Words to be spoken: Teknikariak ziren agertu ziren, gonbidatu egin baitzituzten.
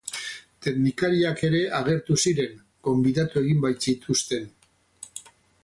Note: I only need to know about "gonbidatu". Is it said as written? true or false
true